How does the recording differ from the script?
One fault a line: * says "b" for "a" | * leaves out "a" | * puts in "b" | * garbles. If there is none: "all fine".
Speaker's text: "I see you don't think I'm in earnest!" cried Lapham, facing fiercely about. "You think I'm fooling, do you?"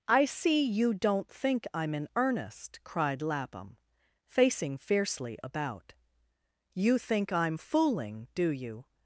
all fine